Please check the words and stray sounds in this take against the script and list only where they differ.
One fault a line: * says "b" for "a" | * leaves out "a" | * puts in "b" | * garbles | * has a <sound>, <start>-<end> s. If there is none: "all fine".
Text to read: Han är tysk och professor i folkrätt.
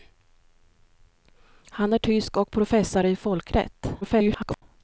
* garbles